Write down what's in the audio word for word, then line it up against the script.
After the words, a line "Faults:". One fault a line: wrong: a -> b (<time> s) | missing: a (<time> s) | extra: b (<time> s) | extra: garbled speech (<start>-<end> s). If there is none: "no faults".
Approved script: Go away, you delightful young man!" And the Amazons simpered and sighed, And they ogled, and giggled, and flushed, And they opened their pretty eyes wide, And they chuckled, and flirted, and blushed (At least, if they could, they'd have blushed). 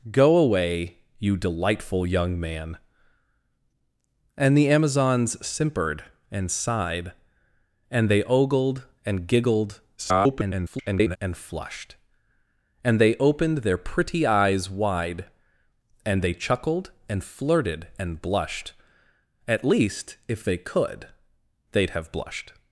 Go away, you delightful young man!" And the Amazons simpered and sighed, And they ogled, and giggled, [garbled] and flushed, And they opened their pretty eyes wide, And they chuckled, and flirted, and blushed (At least, if they could, they'd have blushed).
Faults:
extra: garbled speech (10.0-11.2 s)